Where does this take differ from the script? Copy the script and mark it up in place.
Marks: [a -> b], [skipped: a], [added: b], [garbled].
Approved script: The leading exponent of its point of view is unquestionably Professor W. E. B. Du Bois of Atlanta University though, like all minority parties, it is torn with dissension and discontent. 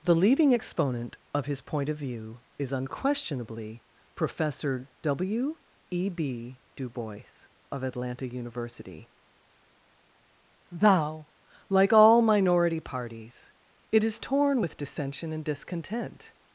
The leading exponent of [its -> his] point of view is unquestionably Professor W. E. B. Du Bois of Atlanta University [though, -> thou] like all minority parties, it is torn with dissension and discontent.